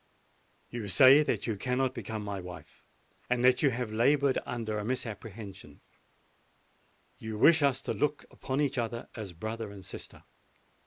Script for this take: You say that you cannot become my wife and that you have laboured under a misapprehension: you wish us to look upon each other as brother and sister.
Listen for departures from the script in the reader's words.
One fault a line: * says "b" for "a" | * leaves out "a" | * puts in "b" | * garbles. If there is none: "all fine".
all fine